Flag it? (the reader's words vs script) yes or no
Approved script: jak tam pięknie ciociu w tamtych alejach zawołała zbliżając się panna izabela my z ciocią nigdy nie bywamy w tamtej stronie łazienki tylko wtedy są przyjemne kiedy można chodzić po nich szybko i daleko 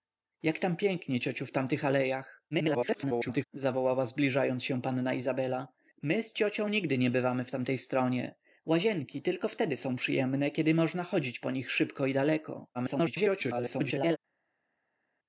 yes